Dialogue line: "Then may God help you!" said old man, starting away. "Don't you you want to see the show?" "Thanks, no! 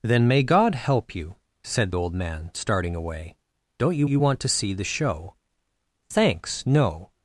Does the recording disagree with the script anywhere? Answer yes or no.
no